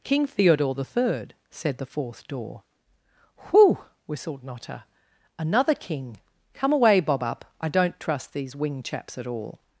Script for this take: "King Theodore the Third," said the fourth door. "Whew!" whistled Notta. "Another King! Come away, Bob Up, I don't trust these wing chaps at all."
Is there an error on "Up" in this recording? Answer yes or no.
no